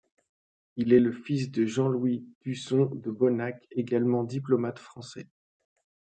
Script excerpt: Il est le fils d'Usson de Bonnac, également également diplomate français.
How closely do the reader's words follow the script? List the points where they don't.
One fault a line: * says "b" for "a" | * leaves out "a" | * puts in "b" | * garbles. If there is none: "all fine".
* puts in "de Jean Louis"
* leaves out "également"